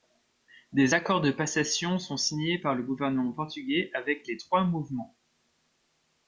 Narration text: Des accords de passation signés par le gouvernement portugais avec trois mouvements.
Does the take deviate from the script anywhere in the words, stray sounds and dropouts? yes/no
yes